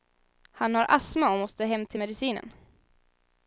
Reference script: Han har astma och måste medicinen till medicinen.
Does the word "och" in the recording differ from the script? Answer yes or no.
no